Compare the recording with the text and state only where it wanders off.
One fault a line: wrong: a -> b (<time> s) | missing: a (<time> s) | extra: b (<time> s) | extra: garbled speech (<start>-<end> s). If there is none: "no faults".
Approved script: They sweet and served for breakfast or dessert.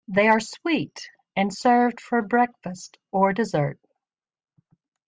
extra: are (0.3 s)